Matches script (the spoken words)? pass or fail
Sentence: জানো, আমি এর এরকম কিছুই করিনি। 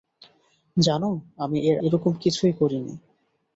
pass